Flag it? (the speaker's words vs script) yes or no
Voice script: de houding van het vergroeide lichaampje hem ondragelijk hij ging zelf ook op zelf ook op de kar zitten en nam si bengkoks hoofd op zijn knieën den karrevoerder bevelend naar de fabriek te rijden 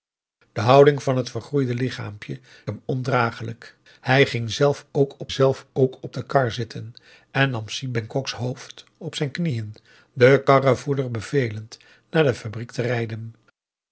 no